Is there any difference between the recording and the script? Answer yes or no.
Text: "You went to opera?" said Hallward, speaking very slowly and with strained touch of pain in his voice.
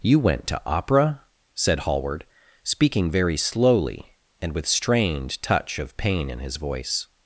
no